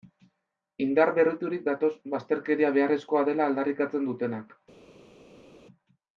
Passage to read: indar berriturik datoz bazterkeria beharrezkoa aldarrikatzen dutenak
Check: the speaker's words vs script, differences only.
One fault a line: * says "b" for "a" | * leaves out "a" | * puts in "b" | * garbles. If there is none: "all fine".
* puts in "dela"